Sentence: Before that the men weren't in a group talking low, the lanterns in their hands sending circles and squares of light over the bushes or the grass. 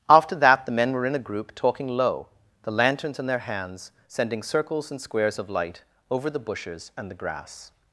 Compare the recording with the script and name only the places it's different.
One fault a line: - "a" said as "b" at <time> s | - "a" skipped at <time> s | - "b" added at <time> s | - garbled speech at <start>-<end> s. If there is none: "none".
- "Before" said as "After" at 0.1 s
- "weren't" said as "were" at 0.9 s
- "or" said as "and" at 7.0 s